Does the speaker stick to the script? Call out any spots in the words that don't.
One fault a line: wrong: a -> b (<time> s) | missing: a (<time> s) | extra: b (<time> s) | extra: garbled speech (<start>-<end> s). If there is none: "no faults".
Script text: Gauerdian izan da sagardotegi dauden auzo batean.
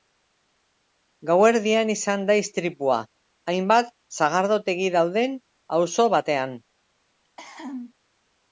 extra: istripua hainbat (2.5 s)